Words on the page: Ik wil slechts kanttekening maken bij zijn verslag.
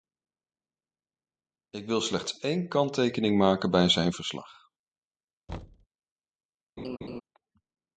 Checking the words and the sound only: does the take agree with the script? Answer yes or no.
no